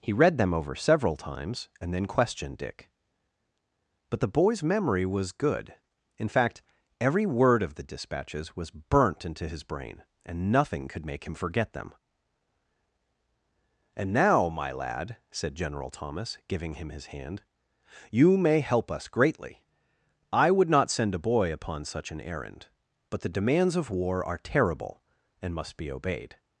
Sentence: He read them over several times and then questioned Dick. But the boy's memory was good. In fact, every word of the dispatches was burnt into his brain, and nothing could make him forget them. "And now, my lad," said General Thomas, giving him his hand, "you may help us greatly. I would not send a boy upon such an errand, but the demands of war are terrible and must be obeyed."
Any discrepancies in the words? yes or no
no